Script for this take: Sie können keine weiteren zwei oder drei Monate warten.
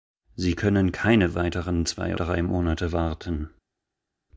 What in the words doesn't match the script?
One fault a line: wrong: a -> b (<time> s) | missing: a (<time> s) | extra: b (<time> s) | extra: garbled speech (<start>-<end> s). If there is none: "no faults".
missing: oder (2.2 s)